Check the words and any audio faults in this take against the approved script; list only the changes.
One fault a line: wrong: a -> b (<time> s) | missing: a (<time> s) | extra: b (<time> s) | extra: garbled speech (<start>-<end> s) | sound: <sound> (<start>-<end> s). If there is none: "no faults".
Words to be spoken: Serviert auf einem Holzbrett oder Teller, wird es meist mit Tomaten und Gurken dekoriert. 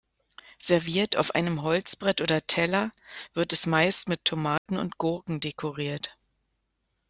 sound: dropout (4.6-4.7 s)